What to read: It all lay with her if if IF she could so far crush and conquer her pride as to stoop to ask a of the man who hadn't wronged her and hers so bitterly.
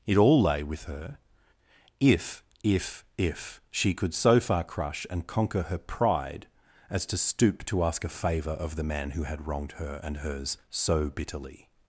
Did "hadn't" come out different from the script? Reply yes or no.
yes